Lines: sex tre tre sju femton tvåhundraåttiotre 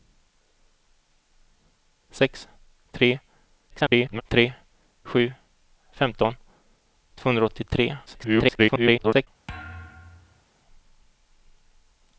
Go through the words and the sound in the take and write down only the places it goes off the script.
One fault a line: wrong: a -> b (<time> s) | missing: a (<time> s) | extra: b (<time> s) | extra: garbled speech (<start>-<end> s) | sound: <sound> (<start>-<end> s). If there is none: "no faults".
extra: garbled speech (3.7-4.2 s)
extra: garbled speech (8.1-9.3 s)
sound: thud (9.5-10.4 s)